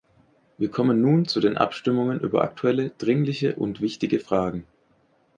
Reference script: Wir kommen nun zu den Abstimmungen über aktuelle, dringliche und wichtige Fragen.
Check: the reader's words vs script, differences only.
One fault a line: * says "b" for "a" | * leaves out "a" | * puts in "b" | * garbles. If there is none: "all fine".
all fine